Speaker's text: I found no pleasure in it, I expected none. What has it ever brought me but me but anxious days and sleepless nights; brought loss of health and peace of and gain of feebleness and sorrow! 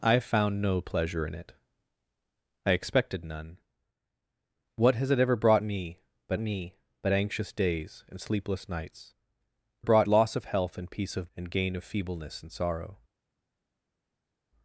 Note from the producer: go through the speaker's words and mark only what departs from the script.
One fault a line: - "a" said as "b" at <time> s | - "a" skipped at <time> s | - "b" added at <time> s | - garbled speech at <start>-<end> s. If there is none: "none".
none